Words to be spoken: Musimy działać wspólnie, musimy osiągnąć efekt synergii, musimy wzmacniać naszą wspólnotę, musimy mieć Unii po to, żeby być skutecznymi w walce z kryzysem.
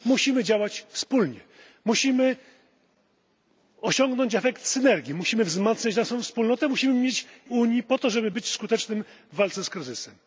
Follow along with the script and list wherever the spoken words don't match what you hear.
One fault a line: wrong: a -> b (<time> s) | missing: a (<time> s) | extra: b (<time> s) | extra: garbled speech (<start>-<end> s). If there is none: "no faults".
no faults